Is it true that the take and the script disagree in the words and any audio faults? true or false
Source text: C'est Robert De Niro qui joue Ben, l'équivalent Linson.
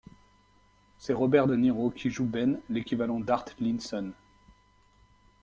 true